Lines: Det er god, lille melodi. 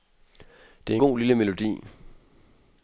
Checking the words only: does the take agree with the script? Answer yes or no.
yes